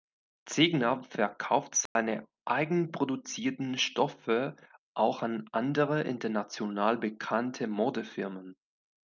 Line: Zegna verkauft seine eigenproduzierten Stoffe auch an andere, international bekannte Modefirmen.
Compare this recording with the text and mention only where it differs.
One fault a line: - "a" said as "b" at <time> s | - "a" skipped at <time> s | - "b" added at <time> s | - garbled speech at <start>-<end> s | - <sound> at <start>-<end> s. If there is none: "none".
- dropout at 1.9-2.0 s